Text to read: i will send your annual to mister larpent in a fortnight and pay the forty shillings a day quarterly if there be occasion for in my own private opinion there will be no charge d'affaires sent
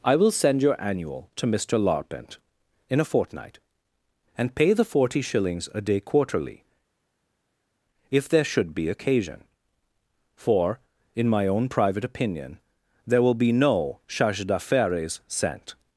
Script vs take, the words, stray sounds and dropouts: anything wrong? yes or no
yes